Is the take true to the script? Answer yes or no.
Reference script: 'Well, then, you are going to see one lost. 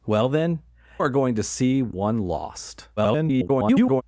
no